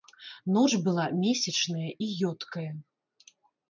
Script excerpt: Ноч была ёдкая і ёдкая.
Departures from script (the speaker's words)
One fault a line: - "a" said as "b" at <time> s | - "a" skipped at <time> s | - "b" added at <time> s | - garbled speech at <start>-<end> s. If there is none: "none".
- "ёдкая" said as "месячная" at 1.2 s